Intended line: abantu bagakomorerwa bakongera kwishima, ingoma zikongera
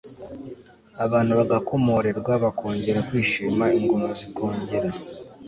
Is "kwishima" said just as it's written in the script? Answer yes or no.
yes